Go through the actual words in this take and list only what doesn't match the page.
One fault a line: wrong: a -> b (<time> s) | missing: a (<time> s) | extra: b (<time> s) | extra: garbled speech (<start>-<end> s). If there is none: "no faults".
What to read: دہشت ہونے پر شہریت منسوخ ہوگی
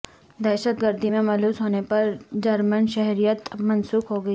extra: گردی میں ملوث (0.8 s)
extra: جرمن (2.4 s)